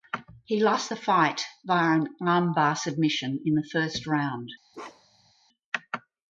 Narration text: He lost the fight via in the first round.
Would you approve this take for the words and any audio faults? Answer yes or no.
no